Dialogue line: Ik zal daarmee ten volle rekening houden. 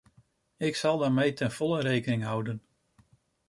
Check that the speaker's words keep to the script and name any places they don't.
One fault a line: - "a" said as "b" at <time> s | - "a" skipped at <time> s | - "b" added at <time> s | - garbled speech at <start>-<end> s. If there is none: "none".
none